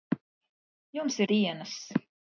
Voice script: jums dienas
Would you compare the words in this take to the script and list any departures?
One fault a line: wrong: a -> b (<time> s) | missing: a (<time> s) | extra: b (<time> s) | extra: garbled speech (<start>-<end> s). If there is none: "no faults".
no faults